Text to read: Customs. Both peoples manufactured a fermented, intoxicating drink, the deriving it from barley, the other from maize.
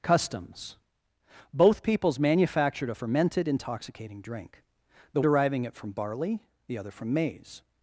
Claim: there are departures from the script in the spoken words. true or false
false